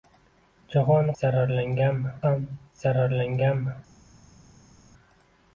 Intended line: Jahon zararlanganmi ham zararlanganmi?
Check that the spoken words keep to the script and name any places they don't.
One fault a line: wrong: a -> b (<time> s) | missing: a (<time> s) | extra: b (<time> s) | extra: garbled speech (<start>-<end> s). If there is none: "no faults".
no faults